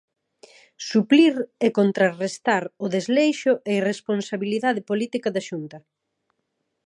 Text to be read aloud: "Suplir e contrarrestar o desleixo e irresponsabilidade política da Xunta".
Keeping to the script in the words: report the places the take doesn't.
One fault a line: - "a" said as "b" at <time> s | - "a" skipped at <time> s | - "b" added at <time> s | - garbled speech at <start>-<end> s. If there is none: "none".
none